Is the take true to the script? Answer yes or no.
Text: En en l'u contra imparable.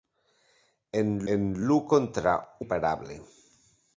yes